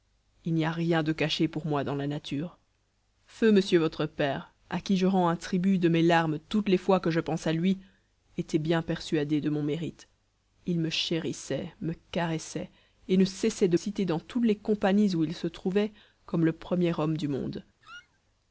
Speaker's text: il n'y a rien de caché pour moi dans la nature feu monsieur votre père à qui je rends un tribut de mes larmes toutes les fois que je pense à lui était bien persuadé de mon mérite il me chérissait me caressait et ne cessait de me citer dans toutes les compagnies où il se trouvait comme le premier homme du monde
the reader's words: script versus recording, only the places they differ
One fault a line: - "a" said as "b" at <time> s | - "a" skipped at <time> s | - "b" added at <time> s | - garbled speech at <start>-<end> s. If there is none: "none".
- "me" skipped at 13.8 s